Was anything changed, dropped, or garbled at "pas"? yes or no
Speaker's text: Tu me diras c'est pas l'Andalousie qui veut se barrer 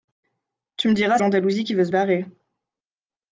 yes